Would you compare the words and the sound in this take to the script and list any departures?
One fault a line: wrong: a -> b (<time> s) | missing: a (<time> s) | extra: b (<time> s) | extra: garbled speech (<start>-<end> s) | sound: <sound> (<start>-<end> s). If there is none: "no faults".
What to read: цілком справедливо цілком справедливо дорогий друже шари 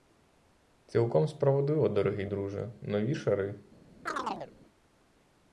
missing: цілком справедливо (1.9 s)
extra: нові (2.8 s)
sound: chirp (4.1-4.5 s)